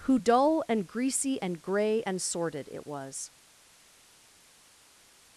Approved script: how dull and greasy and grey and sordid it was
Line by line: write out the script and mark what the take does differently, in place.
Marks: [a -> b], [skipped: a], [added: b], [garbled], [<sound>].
[how -> who] dull and greasy and grey and sordid it was